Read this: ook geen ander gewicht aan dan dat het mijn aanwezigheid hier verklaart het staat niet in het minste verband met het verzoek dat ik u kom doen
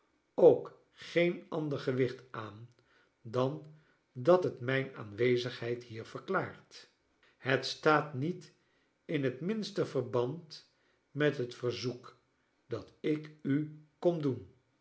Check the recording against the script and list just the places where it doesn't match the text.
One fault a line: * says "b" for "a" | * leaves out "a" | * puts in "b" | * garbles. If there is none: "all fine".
all fine